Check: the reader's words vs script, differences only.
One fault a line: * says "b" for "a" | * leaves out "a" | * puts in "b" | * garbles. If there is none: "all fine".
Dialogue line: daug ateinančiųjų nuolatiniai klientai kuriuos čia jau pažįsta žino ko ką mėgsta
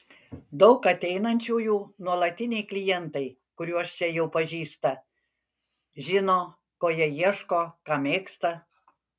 * puts in "jie ieško"